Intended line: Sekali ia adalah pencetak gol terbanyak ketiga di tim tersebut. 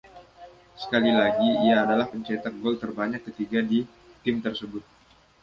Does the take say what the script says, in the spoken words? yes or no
no